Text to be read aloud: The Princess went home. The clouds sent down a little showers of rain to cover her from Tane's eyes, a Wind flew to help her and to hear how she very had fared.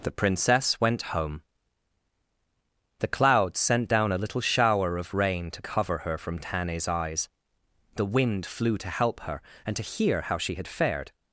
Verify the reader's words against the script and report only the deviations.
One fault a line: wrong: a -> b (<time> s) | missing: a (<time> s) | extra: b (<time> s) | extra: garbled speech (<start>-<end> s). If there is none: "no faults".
wrong: showers -> shower (4.4 s)
wrong: a -> the (7.9 s)
missing: very (10.5 s)